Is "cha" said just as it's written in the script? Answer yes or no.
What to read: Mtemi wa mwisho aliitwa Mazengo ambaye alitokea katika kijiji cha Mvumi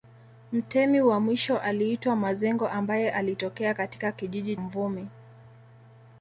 no